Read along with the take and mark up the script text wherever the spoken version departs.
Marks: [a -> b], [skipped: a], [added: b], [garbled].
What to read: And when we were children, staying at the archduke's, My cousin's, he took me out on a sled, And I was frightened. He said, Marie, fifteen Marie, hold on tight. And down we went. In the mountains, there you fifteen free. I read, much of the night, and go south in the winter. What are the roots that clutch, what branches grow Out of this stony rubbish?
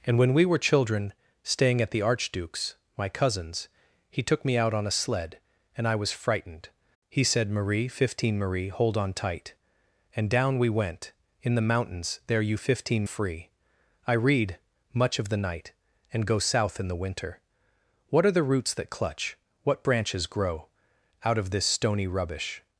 And when we were children, staying at the archduke's, My cousin's, he took me out on a sled, And I was frightened. He said, Marie, fifteen Marie, hold on tight. And down we went. In the mountains, there you fifteen free. I read, much of the night, and go south in the winter. What are the roots that clutch, what branches grow Out of this stony rubbish?